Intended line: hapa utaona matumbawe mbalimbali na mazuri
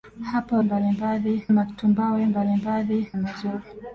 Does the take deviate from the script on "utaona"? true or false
true